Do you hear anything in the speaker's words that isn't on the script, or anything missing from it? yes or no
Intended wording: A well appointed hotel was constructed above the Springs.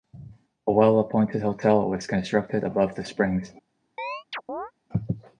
no